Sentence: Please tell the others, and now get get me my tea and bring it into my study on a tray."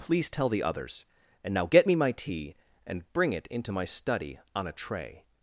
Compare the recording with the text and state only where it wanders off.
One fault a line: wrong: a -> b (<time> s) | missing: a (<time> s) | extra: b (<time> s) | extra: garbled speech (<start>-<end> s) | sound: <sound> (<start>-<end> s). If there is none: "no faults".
missing: get (1.9 s)